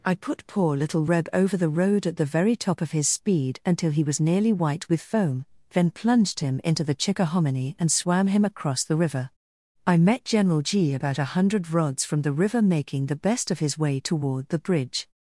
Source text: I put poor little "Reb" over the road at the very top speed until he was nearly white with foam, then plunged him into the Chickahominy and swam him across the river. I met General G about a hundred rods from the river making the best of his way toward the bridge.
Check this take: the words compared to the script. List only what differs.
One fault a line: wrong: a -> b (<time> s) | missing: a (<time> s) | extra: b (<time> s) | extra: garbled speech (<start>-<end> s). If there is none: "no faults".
extra: of his (2.8 s)